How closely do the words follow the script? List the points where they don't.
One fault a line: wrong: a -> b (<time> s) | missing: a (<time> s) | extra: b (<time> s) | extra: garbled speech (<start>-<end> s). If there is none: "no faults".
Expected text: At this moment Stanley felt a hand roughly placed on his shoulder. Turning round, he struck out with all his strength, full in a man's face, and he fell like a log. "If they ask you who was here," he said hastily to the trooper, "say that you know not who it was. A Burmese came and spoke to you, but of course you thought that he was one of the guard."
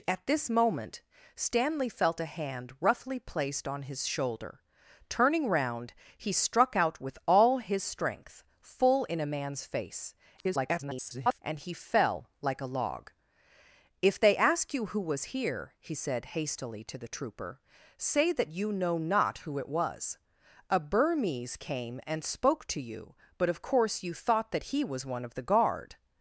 extra: garbled speech (10.4-11.4 s)